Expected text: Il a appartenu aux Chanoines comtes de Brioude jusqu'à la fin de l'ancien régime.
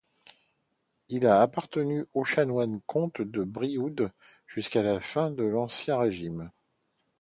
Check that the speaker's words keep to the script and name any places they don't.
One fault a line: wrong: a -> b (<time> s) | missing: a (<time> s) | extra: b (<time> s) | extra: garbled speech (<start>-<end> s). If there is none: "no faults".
no faults